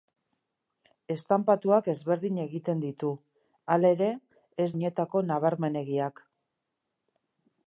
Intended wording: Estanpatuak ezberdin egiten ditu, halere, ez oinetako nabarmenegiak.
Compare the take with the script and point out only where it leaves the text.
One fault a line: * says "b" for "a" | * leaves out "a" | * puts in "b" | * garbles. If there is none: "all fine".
all fine